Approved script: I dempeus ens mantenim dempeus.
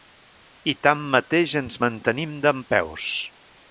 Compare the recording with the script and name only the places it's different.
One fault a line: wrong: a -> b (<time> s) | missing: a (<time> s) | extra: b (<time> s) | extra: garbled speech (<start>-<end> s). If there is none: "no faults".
wrong: dempeus -> tanmateix (0.9 s)